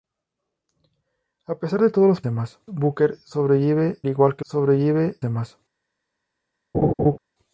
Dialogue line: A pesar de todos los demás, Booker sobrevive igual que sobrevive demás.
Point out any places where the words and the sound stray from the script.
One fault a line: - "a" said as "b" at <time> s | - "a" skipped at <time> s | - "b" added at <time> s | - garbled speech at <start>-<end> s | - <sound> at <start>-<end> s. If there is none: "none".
- laugh at 6.7-7.2 s